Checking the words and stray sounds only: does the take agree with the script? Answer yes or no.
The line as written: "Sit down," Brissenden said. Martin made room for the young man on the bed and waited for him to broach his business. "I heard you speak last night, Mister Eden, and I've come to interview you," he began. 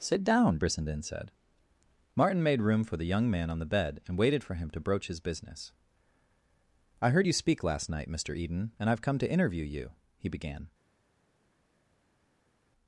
yes